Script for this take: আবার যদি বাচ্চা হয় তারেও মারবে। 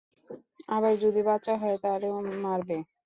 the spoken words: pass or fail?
pass